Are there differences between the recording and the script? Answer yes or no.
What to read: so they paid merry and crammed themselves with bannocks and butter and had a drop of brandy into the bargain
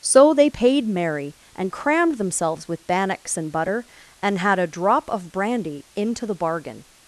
no